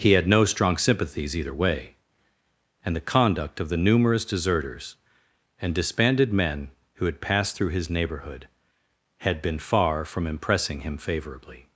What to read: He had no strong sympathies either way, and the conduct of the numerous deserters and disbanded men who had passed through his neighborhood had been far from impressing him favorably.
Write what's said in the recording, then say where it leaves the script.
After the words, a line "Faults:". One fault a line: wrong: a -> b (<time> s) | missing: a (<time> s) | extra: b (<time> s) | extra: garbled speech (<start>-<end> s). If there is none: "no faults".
He had no strong sympathies either way, and the conduct of the numerous deserters and disbanded men who had passed through his neighborhood had been far from impressing him favorably.
Faults:
no faults